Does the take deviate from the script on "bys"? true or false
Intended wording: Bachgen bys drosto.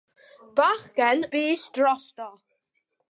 false